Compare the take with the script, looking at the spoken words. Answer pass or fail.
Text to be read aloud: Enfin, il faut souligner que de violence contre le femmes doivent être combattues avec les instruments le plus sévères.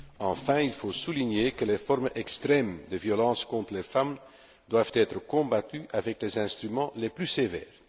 fail